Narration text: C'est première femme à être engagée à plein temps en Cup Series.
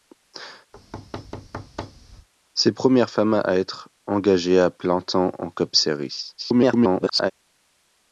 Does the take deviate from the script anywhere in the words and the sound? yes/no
yes